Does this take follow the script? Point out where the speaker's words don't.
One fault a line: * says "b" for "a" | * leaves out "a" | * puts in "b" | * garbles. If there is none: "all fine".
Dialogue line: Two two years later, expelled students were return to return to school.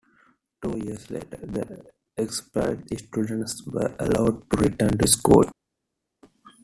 * leaves out "two"
* puts in "the"
* says "allowed" for "return"